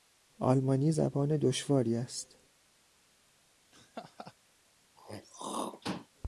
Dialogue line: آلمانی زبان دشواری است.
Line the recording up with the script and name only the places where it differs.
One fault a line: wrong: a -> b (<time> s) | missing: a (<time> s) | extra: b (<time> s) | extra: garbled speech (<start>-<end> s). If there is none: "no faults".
no faults